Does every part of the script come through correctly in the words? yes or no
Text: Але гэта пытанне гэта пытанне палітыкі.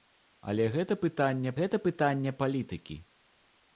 yes